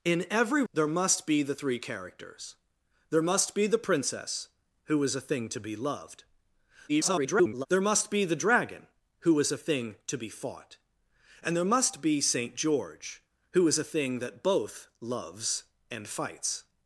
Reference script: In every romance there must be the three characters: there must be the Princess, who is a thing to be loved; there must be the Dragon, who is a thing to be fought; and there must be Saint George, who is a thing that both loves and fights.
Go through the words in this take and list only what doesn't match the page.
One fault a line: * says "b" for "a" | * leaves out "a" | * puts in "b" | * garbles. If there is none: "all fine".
* leaves out "romance"
* garbles